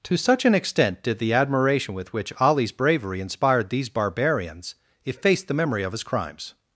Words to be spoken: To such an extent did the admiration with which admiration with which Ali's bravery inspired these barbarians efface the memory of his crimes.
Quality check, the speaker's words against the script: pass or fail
fail